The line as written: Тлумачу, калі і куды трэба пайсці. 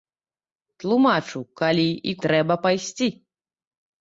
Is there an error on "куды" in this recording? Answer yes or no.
yes